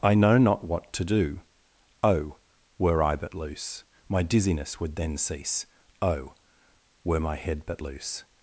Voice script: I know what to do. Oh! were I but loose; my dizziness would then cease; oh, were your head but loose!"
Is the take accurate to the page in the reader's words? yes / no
no